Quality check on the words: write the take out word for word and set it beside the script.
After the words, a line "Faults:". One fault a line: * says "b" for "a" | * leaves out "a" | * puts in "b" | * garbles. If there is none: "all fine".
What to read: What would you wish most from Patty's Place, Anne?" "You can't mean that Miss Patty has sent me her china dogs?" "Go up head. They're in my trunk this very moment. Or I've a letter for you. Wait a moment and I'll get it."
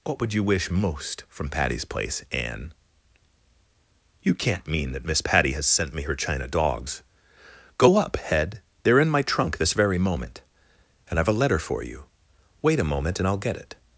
What would you wish most from Patty's Place, Anne?" "You can't mean that Miss Patty has sent me her china dogs?" "Go up head. They're in my trunk this very moment. And I've a letter for you. Wait a moment and I'll get it."
Faults:
* says "And" for "Or"